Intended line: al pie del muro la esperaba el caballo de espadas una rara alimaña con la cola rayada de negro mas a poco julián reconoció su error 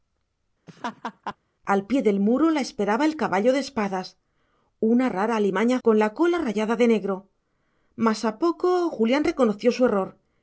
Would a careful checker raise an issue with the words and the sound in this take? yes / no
yes